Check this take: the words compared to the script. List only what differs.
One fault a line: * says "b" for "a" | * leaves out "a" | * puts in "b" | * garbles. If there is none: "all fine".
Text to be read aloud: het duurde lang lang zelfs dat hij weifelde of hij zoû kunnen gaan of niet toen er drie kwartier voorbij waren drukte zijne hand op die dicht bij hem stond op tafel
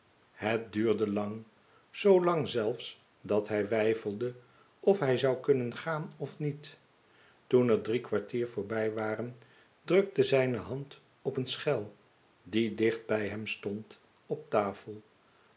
* puts in "zoo"
* puts in "een schel"